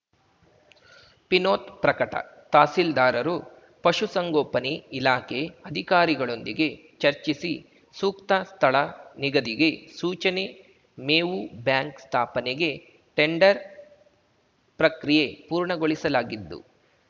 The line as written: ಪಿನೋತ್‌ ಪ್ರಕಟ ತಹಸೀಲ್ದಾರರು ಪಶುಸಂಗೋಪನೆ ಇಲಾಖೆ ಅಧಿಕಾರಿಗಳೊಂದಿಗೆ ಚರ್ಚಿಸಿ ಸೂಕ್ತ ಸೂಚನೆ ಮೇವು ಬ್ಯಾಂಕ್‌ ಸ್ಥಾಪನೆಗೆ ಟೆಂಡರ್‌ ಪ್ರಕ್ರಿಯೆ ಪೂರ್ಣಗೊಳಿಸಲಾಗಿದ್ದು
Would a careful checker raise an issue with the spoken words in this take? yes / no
yes